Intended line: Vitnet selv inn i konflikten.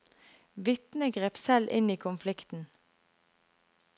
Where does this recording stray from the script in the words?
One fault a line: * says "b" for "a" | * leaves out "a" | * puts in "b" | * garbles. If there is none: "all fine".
* puts in "grep"